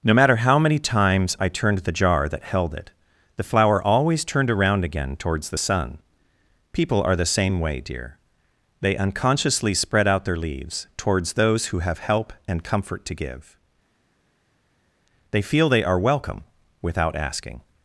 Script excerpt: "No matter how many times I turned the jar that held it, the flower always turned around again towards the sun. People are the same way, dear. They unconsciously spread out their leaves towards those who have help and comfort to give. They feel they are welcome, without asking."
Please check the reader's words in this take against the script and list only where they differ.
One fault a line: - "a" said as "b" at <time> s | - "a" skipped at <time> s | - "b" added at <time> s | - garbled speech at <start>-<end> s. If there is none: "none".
none